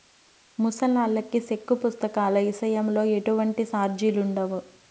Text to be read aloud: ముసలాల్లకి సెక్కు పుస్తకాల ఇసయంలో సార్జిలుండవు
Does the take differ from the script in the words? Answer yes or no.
yes